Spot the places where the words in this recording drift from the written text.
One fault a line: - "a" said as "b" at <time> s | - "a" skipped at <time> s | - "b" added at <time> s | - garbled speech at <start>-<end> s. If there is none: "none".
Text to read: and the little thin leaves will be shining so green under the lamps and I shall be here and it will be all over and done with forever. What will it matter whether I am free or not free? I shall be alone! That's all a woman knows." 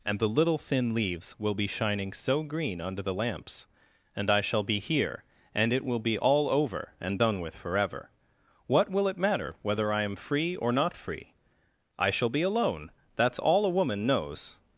none